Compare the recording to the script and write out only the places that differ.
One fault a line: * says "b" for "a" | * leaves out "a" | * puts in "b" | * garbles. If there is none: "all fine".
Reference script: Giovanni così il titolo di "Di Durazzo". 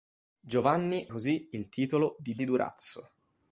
all fine